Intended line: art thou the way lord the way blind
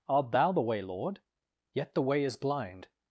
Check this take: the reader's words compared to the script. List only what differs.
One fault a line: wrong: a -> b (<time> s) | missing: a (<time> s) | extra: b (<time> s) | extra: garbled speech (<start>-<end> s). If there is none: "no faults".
extra: yet (1.8 s)
extra: is (2.2 s)